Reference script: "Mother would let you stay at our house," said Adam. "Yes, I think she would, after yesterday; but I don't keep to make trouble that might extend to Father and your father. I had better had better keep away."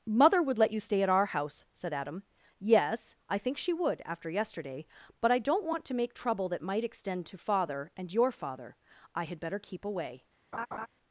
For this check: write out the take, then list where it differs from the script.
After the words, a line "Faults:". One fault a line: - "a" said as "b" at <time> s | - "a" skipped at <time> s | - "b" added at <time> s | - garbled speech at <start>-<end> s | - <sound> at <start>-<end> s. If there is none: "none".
"Mother would let you stay at our house," said Adam. "Yes, I think she would, after yesterday; but I don't want to make trouble that might extend to Father and your father. I had better keep away."
Faults:
- "keep" said as "want" at 5.7 s
- "had better" skipped at 9.6 s
- laugh at 10.5-10.9 s